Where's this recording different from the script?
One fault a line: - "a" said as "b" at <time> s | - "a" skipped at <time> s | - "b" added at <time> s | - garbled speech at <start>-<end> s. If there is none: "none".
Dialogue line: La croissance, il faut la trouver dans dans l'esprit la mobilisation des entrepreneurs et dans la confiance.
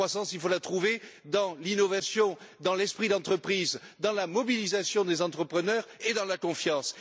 - "l'innovation" added at 1.6 s
- "d'entreprise dans" added at 3.1 s